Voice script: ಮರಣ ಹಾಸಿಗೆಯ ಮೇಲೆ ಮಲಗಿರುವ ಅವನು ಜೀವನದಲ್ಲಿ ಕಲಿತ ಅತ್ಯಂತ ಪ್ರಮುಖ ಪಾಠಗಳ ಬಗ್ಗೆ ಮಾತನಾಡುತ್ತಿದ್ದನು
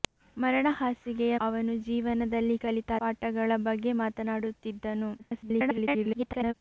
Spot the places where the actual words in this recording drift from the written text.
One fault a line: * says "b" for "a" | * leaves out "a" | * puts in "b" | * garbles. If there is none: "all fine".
* leaves out "ಮೇಲೆ ಮಲಗಿರುವ"
* leaves out "ಅತ್ಯಂತ ಪ್ರಮುಖ"
* garbles